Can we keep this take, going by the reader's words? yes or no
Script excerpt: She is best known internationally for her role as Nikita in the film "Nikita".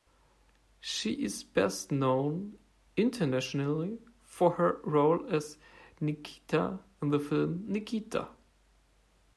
yes